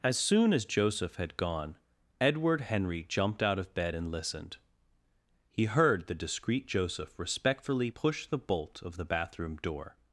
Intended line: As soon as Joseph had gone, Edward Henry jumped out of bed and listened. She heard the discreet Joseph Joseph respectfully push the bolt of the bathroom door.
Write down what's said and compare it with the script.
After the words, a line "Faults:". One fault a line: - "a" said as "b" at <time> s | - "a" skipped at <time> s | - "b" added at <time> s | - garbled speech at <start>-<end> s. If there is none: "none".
As soon as Joseph had gone, Edward Henry jumped out of bed and listened. He heard the discreet Joseph respectfully push the bolt of the bathroom door.
Faults:
- "She" said as "He" at 5.5 s
- "Joseph" skipped at 7.2 s